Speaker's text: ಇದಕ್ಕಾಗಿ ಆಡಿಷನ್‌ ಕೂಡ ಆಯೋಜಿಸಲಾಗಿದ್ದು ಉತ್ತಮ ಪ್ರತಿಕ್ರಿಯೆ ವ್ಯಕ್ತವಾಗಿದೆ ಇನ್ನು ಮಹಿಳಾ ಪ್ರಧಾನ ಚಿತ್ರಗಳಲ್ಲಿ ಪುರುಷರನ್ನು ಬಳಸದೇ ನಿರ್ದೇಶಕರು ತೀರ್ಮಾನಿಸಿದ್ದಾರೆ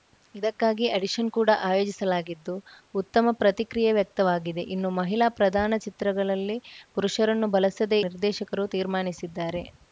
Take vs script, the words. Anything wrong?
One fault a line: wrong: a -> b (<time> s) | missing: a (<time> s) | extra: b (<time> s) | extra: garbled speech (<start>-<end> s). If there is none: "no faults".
no faults